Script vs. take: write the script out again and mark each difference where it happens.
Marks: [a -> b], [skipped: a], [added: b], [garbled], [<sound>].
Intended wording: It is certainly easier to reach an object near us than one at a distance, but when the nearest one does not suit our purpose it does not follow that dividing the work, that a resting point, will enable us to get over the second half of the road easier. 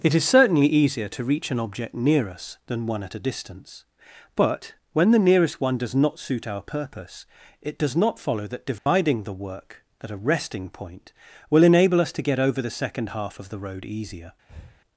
It is certainly easier to reach an object near us than one at a distance, but when the nearest one does not suit our purpose it does not follow that dividing [dropout] the work, [that -> at] a resting point, will enable us to get over the second half of the road easier. [breath]